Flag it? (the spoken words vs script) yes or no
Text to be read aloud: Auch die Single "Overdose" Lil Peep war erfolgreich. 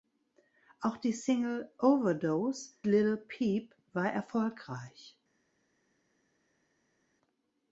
no